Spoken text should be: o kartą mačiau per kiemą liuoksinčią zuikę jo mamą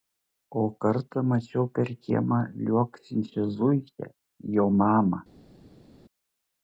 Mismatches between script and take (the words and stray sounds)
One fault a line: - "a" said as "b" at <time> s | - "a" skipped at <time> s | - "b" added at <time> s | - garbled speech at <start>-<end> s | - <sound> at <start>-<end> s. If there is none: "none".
none